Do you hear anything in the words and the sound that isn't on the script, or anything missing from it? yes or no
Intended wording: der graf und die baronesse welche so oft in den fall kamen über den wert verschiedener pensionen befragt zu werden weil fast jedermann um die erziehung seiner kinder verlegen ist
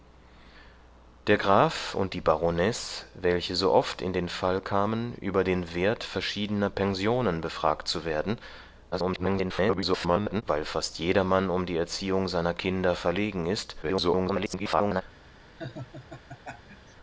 yes